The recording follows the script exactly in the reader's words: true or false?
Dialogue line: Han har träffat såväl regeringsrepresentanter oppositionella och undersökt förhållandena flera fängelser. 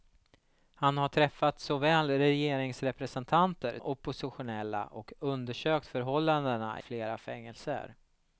true